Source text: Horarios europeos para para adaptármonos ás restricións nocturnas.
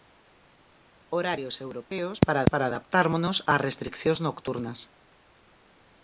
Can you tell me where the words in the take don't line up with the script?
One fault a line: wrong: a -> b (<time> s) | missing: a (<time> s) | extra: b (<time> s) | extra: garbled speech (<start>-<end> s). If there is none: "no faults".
no faults